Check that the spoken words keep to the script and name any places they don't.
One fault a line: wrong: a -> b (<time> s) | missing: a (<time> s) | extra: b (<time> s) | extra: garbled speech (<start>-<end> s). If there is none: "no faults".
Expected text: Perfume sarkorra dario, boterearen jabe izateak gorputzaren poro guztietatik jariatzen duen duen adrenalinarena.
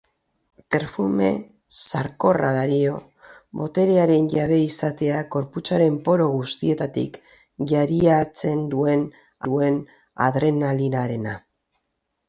no faults